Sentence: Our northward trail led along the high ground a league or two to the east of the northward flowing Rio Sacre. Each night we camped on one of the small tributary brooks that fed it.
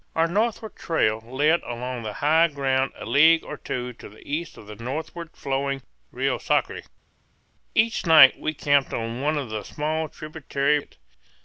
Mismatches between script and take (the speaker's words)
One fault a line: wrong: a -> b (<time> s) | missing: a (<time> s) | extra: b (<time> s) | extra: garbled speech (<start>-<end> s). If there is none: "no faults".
missing: brooks that fed (10.8 s)